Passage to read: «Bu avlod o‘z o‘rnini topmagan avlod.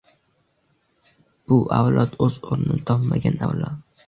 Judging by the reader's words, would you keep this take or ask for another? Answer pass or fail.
pass